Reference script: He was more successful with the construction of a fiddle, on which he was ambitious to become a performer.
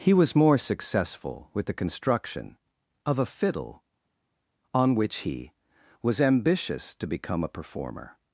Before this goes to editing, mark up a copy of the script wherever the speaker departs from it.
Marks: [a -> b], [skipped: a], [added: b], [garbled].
He was more successful with the construction of a fiddle, on which he was ambitious to become a performer.